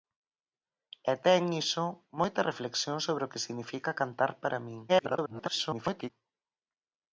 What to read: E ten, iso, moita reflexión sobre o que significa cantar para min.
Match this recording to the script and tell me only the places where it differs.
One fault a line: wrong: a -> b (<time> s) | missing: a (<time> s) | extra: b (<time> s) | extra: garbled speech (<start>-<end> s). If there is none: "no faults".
extra: garbled speech (4.9-6.1 s)